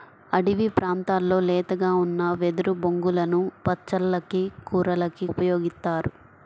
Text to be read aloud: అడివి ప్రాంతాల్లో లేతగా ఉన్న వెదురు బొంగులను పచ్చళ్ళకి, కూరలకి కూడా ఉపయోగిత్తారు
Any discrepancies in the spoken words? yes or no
yes